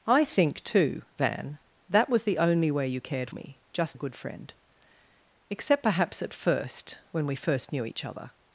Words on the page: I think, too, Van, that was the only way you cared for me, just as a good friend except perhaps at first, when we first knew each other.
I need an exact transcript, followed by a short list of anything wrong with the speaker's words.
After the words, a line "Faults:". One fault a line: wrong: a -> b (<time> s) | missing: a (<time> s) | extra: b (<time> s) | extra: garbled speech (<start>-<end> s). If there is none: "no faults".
I think, too, Van, that was the only way you cared me, just a good friend except perhaps at first, when we first knew each other.
Faults:
missing: for (3.3 s)
missing: as (4.0 s)